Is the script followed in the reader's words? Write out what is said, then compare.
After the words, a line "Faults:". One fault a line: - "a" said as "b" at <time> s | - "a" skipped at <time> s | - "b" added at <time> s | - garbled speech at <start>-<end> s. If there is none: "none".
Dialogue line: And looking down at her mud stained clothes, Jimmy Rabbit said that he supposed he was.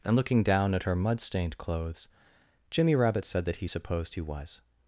And looking down at her mud stained clothes, Jimmy Rabbit said that he supposed he was.
Faults:
none